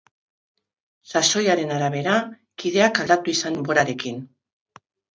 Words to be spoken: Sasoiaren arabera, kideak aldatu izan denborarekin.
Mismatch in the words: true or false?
false